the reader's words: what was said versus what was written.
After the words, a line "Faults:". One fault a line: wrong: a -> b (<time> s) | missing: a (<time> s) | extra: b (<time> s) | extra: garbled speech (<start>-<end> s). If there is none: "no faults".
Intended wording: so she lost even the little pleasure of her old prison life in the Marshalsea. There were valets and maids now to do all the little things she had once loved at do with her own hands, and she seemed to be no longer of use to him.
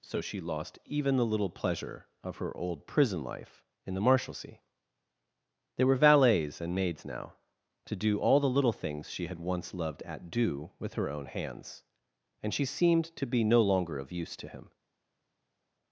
so she lost even the little pleasure of her old prison life in the Marshalsea. There were valets and maids now to do all the little things she had once loved at do with her own hands, and she seemed to be no longer of use to him.
Faults:
no faults